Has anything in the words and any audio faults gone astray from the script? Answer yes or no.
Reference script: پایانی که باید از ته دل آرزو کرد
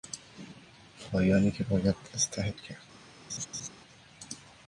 yes